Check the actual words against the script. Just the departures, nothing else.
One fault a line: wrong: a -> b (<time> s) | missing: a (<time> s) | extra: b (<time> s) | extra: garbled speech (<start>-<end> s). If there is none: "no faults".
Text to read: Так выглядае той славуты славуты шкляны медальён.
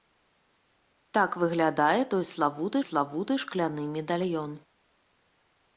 no faults